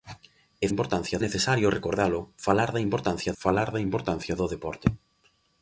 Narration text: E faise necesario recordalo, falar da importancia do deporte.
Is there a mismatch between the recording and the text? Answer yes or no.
yes